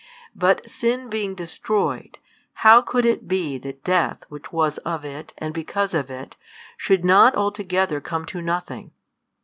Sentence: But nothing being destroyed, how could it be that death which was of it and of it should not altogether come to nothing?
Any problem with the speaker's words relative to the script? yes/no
yes